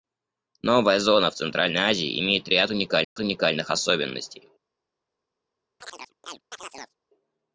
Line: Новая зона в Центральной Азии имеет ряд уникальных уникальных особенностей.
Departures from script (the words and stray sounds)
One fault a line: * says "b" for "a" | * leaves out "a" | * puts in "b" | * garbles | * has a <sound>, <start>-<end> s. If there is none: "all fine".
* has a dropout, 3.0-3.2 s
* has a chirp, 5.8-7.0 s